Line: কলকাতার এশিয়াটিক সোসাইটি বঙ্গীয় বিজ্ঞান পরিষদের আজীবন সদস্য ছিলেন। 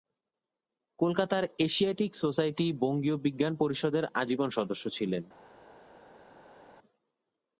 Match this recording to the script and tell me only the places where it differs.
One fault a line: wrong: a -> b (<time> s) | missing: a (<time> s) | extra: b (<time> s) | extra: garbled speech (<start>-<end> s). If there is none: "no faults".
no faults